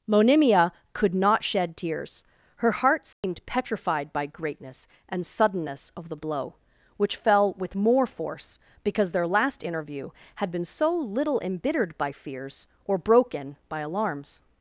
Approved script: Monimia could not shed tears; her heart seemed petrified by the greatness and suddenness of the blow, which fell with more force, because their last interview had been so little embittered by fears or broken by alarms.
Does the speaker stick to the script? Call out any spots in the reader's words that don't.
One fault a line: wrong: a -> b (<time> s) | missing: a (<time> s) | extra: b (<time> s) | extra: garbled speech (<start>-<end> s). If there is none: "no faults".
missing: the (4.3 s)